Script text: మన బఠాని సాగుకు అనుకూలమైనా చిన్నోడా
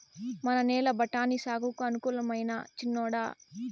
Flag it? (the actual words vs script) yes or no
yes